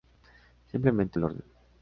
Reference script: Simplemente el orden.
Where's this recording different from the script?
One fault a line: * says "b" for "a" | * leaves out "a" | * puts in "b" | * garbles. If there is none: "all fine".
all fine